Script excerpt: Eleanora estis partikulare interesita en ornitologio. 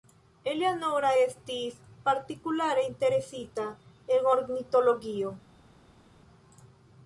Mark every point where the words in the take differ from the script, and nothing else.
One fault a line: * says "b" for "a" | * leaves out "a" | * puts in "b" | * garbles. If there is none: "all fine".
all fine